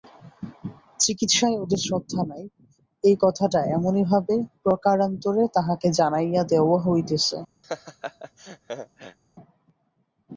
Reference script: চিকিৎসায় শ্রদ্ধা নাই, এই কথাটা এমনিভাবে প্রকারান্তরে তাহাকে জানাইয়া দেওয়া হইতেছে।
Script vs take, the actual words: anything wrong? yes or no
yes